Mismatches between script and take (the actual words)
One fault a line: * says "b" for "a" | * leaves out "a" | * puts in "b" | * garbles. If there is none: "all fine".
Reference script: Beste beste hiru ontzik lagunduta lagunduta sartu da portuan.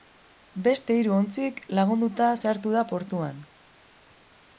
* leaves out "beste"
* leaves out "lagunduta"